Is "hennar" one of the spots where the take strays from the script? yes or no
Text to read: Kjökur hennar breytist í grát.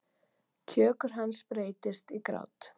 yes